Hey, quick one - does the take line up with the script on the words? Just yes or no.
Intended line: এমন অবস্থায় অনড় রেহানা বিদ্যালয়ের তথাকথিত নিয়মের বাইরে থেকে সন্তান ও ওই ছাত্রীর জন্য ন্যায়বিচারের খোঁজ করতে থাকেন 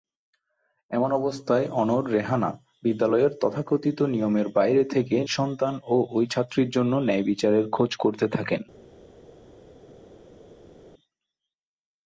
yes